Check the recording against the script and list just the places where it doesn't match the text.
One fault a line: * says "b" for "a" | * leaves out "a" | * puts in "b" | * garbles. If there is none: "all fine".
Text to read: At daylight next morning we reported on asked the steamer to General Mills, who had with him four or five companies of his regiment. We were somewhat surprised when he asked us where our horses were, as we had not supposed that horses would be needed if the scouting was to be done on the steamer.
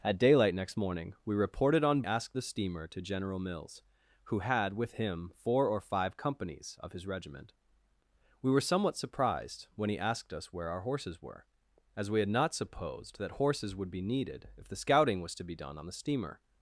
all fine